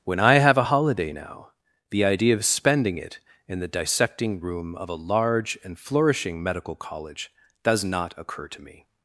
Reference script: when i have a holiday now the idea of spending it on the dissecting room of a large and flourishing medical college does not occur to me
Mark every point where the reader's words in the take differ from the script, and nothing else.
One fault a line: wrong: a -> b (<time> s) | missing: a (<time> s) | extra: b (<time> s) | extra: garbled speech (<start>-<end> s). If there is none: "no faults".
wrong: on -> in (3.5 s)